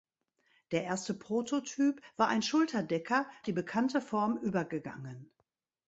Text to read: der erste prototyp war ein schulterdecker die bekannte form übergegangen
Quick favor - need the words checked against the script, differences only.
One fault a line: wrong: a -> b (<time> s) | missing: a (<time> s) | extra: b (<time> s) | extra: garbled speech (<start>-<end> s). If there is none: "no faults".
no faults